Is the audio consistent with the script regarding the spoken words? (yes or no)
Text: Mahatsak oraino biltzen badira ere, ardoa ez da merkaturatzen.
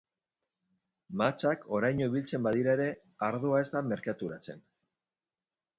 yes